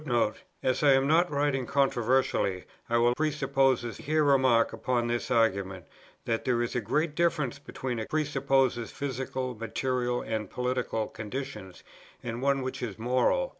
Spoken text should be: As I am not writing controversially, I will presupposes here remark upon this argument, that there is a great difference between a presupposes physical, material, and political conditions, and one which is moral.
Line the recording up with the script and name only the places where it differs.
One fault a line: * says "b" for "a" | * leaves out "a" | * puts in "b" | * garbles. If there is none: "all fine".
all fine